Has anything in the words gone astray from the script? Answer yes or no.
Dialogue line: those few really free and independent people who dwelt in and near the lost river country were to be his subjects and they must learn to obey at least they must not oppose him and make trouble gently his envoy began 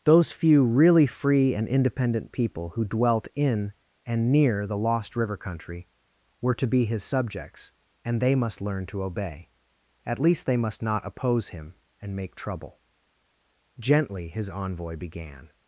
no